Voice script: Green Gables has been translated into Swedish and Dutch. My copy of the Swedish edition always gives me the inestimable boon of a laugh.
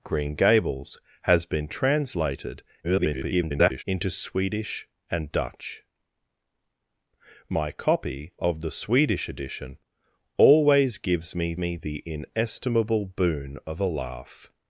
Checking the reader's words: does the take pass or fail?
fail